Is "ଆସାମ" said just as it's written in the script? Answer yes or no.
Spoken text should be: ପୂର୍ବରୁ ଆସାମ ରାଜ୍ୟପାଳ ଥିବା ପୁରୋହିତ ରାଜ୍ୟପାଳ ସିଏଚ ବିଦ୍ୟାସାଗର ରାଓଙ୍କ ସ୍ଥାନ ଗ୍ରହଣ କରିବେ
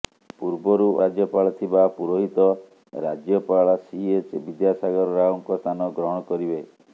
no